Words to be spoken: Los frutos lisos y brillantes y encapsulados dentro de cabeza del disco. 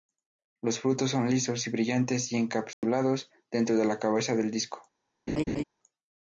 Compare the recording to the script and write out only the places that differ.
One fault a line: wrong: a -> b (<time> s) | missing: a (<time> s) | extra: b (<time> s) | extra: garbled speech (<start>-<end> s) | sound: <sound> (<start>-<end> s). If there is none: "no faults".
extra: son (1.1 s)
sound: dropout (2.7-2.8 s)
extra: la (3.9 s)
sound: laugh (5.3-5.6 s)